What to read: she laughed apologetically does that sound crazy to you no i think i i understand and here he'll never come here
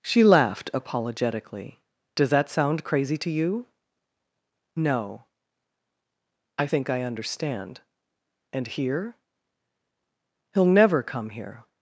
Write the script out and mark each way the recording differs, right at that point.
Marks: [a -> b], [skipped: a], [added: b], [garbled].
she laughed apologetically does that sound crazy to you no i think i [skipped: i] understand and here he'll never come here